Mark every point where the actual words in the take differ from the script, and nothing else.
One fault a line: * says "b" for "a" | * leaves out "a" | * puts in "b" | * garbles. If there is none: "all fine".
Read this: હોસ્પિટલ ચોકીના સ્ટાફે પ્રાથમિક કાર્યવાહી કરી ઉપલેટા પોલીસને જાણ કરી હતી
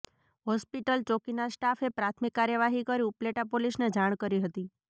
all fine